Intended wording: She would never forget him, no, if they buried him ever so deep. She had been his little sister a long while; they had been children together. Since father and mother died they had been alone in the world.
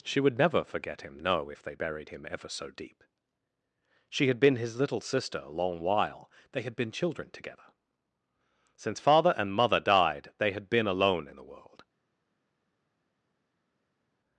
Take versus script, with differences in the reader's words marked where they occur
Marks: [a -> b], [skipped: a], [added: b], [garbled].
She would never forget him, no, if they buried him ever so deep. She had been his little sister a long while; they had been children together. Since father and mother died they had been alone in the world.